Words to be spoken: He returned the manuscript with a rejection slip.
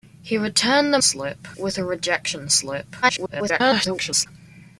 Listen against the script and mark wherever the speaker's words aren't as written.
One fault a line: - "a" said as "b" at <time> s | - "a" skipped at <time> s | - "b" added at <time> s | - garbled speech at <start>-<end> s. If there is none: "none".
- "manuscript" said as "slip" at 1.0 s
- garbled speech at 3.0-4.3 s